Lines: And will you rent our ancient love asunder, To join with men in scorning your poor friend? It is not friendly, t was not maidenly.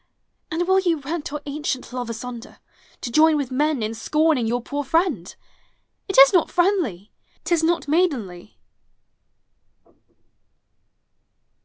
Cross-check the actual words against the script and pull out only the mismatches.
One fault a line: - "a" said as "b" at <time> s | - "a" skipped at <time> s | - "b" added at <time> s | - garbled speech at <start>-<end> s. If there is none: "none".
- "was" said as "is" at 7.5 s